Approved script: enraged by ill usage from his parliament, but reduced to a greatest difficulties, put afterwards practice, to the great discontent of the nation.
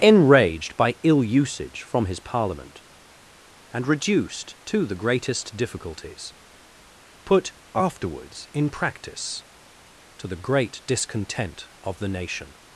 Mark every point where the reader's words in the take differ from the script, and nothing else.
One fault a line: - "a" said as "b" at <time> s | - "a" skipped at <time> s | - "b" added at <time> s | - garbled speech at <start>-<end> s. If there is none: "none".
- "but" said as "and" at 3.7 s
- "a" said as "the" at 4.8 s
- "in" added at 8.5 s